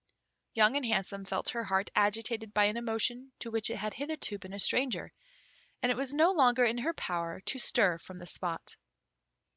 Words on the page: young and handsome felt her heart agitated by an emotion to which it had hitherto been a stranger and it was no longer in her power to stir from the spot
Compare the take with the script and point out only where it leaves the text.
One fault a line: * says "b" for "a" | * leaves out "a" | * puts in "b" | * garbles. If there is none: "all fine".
all fine